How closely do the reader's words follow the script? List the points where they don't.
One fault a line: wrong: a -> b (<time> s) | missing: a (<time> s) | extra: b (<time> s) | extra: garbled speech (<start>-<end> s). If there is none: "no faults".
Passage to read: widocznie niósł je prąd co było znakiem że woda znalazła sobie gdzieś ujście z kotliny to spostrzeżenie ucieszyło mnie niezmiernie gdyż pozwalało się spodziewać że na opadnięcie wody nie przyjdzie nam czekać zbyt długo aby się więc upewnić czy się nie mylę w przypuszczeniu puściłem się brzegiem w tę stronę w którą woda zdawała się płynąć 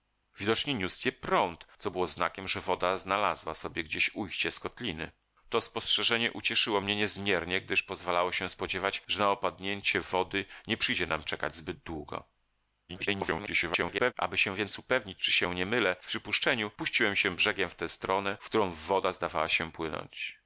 extra: garbled speech (12.9-14.1 s)